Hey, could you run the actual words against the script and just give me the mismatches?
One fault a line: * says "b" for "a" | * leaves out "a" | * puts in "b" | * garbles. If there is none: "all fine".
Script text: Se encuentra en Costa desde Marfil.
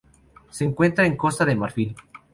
* says "de" for "desde"